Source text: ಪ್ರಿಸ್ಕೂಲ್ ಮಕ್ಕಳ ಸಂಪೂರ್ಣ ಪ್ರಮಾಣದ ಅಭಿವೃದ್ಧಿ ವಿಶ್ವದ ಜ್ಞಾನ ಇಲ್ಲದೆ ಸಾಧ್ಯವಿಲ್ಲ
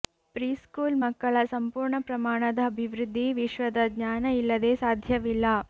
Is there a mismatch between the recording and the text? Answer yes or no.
no